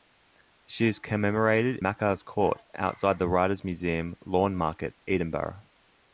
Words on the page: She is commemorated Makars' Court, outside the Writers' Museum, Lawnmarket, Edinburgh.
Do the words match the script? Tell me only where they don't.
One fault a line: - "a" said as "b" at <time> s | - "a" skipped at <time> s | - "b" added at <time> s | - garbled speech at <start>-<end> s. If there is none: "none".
none